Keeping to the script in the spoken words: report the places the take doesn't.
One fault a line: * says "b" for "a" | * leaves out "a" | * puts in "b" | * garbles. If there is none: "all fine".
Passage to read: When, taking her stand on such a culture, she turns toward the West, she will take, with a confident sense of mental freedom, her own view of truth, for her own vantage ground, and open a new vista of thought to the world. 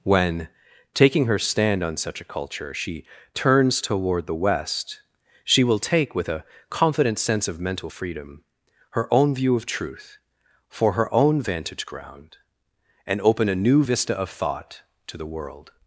all fine